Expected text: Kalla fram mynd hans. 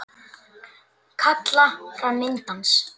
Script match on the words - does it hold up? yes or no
yes